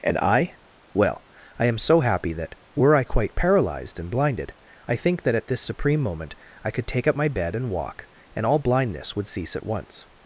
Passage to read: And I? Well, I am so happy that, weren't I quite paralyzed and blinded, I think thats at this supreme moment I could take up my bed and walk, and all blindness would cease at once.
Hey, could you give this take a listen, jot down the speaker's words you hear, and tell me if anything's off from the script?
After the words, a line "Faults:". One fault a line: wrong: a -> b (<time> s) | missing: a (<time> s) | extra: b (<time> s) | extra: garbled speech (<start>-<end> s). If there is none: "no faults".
And I? Well, I am so happy that, were I quite paralyzed and blinded, I think that at this supreme moment I could take up my bed and walk, and all blindness would cease at once.
Faults:
wrong: weren't -> were (2.8 s)
wrong: thats -> that (5.2 s)